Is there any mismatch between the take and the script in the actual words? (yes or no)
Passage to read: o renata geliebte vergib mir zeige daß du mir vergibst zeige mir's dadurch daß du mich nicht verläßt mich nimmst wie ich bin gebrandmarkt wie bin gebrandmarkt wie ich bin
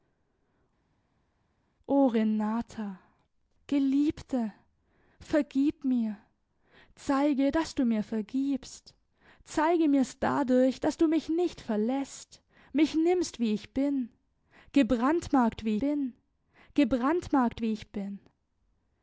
no